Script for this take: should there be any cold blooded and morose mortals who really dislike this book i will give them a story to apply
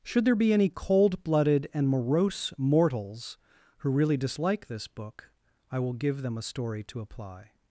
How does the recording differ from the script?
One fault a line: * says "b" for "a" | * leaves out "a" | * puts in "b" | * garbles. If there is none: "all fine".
all fine